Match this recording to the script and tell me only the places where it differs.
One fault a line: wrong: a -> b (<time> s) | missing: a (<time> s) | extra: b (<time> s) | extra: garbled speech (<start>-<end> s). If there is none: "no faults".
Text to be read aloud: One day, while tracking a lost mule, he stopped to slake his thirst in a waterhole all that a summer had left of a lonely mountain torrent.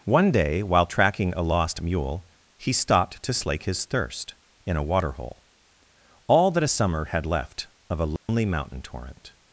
no faults